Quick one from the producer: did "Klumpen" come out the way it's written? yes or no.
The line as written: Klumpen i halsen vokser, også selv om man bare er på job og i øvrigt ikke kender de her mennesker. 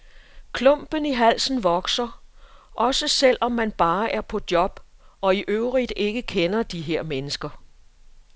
yes